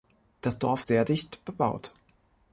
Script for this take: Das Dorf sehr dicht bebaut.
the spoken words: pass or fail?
pass